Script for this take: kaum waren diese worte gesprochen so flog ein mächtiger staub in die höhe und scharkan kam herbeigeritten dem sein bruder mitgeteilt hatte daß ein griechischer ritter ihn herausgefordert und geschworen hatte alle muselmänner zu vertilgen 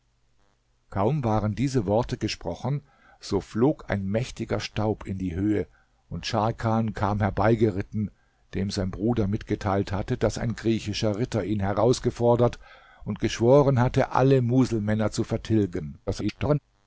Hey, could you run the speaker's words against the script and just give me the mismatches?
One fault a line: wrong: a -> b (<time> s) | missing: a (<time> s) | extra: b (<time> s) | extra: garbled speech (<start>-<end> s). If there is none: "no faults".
extra: garbled speech (16.1-16.6 s)